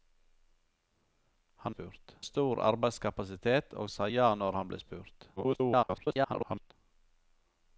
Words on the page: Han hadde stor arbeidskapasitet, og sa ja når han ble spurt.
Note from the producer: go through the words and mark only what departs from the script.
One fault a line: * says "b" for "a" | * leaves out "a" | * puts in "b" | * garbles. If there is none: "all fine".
* says "spurt" for "hadde"
* garbles